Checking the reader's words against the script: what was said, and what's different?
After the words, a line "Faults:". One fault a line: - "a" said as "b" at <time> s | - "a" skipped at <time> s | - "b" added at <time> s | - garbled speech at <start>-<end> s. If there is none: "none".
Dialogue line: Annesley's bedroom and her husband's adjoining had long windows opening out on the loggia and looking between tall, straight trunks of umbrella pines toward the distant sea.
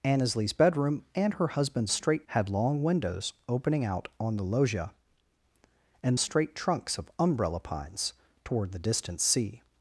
Annesley's bedroom and her husband's straight had long windows opening out on the loggia and straight trunks of umbrella pines toward the distant sea.
Faults:
- "adjoining" said as "straight" at 1.9 s
- "looking between tall" skipped at 6.2 s